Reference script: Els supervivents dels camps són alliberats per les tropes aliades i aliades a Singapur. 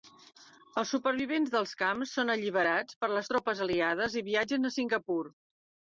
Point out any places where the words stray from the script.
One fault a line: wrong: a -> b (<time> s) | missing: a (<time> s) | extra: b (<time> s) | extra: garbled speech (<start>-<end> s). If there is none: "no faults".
wrong: aliades -> viatgen (4.3 s)